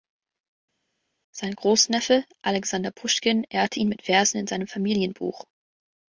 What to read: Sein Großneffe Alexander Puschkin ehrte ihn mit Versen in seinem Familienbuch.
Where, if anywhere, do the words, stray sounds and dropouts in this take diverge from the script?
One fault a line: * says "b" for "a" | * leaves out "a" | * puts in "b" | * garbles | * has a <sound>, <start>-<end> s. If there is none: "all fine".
all fine